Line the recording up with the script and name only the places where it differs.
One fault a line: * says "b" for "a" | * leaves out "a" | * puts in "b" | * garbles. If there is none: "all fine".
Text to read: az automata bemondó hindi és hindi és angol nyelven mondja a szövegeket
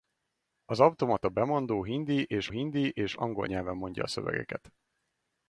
all fine